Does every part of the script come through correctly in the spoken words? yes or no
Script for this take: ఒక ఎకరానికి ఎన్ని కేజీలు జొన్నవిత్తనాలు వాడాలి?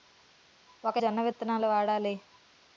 no